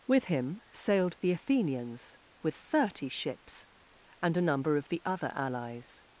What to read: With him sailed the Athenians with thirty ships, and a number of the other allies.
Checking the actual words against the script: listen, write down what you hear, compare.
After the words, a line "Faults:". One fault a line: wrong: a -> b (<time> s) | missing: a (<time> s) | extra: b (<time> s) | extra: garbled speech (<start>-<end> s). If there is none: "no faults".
With him sailed the Athenians with thirty ships, and a number of the other allies.
Faults:
no faults